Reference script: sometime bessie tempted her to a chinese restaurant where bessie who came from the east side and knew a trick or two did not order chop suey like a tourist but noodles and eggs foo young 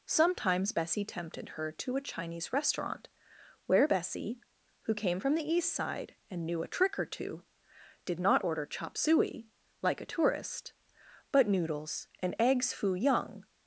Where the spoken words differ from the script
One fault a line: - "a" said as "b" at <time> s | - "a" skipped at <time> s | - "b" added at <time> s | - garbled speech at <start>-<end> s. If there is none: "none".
- "sometime" said as "sometimes" at 0.1 s